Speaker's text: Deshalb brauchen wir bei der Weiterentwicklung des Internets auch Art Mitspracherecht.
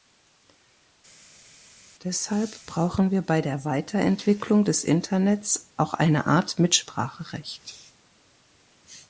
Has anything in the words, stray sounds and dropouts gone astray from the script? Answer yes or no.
yes